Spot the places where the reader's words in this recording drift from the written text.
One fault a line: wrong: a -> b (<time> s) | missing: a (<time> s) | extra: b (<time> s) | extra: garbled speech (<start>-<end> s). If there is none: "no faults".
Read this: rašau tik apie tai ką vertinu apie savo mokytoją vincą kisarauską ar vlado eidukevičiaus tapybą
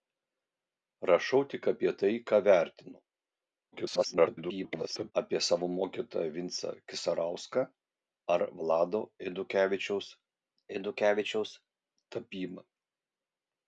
extra: garbled speech (3.7-5.1 s)
extra: eidukevičiaus (10.7 s)